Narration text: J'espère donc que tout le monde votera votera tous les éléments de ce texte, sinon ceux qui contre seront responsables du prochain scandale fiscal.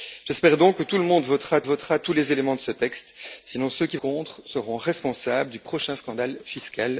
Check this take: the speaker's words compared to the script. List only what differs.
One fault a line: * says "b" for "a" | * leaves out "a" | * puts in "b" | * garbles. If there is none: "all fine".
all fine